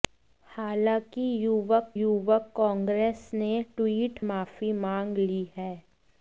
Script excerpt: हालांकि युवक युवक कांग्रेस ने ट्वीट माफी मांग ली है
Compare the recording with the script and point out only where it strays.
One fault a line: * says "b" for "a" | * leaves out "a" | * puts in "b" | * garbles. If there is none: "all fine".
all fine